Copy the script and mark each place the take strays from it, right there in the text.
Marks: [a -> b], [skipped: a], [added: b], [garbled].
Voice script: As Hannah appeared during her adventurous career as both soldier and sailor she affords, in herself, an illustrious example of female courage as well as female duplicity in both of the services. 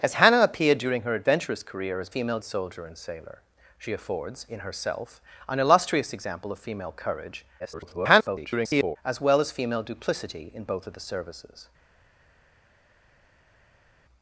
As Hannah appeared during her adventurous career as [both -> female] soldier and sailor she affords, in herself, an illustrious example of female courage [garbled] as well as female duplicity in both of the services.